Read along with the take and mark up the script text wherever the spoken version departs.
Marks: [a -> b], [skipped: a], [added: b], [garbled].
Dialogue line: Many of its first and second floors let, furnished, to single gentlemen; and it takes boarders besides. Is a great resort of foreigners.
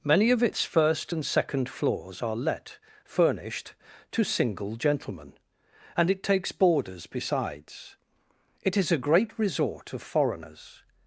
Many of its first and second floors [added: are] let, furnished, to single gentlemen; and it takes boarders besides. [added: It] Is a great resort of foreigners.